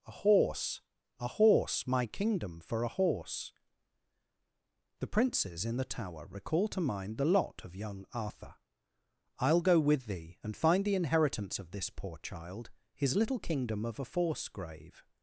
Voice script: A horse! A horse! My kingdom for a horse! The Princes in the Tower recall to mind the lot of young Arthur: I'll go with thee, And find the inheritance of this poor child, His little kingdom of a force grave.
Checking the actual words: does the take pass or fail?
pass